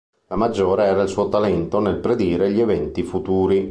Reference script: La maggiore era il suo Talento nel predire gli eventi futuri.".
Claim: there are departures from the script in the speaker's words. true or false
false